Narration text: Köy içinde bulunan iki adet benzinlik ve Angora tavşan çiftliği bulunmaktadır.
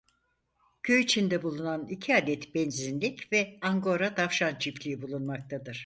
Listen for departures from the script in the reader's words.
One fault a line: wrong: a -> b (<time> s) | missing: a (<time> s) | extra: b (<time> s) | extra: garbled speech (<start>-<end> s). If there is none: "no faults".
no faults